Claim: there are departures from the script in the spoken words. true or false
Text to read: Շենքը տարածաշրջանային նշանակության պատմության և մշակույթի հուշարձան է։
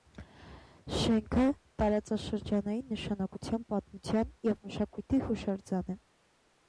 false